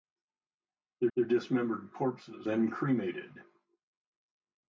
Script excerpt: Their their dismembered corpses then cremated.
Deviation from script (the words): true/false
false